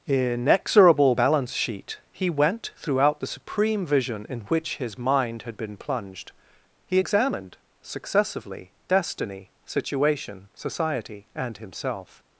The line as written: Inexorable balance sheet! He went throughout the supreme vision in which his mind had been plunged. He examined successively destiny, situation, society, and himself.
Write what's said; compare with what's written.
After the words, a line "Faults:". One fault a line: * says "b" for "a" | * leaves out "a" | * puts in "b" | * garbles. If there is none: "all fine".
Inexorable balance sheet! He went throughout the supreme vision in which his mind had been plunged. He examined successively destiny, situation, society, and himself.
Faults:
all fine